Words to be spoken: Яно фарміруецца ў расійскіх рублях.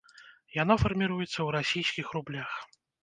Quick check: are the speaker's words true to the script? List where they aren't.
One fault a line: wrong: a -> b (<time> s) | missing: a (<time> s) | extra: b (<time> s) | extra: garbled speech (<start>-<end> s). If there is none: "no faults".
no faults